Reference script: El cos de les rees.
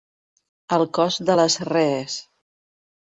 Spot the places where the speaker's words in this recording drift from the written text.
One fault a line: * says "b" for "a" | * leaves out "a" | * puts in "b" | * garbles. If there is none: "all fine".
all fine